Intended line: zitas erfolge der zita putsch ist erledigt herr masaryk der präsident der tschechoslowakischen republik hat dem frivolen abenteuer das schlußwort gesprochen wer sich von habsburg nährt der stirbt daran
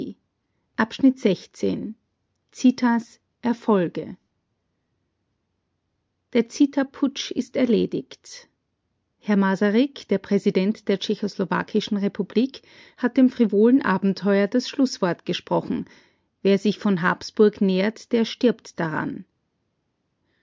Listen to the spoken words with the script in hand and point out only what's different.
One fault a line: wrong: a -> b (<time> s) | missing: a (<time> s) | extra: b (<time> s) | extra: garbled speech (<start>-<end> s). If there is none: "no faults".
no faults